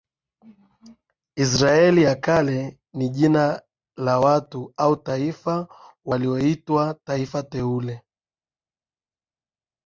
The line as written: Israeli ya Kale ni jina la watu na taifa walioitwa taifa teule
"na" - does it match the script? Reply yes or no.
no